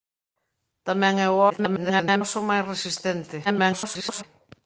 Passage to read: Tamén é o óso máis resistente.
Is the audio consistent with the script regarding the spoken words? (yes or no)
no